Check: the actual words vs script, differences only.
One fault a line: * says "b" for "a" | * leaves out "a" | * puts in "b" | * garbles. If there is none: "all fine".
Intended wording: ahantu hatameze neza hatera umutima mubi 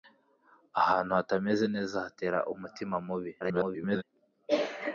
* garbles